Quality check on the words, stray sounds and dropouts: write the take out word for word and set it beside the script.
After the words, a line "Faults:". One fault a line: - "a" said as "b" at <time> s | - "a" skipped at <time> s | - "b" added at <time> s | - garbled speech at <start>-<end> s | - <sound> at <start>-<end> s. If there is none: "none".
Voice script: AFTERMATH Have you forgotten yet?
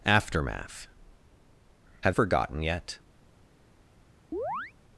AFTERMATH Have forgotten yet?
Faults:
- "you" skipped at 2.2 s
- chirp at 4.3-4.7 s